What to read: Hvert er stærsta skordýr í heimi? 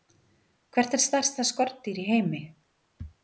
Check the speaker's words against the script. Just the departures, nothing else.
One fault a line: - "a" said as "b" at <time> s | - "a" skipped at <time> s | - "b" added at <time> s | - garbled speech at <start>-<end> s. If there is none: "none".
none